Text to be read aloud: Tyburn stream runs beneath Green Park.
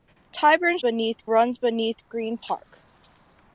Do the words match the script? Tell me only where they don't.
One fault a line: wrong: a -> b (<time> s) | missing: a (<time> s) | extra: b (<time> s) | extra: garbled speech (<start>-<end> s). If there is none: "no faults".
wrong: stream -> beneath (0.8 s)